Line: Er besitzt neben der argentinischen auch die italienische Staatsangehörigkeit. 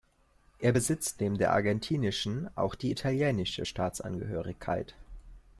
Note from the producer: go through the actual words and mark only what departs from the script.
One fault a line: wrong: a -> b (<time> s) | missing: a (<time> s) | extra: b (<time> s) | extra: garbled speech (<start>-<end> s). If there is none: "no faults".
no faults